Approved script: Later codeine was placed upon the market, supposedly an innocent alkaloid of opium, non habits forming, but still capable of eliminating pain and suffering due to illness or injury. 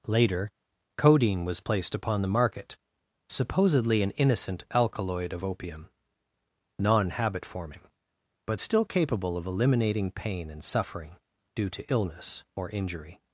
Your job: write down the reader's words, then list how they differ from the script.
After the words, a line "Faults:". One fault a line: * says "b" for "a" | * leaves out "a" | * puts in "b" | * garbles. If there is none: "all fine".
Later codeine was placed upon the market, supposedly an innocent alkaloid of opium, non habit forming, but still capable of eliminating pain and suffering due to illness or injury.
Faults:
* says "habit" for "habits"